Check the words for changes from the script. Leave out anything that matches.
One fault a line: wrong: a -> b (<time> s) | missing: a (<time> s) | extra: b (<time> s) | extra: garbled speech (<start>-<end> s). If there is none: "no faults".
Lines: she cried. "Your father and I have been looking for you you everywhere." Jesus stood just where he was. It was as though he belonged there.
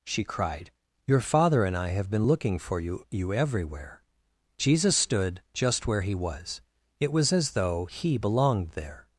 no faults